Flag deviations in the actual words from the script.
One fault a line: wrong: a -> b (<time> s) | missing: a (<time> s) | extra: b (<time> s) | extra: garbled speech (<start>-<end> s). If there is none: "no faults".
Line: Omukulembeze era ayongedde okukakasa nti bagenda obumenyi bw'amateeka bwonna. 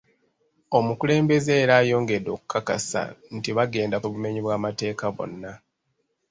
no faults